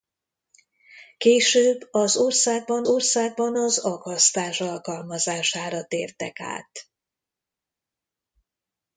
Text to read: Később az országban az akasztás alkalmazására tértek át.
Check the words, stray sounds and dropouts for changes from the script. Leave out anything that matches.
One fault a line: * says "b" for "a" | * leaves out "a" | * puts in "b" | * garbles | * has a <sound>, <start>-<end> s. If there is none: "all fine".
* puts in "országban"